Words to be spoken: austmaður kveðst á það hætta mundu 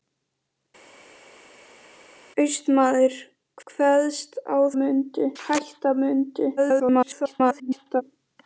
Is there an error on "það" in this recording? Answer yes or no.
yes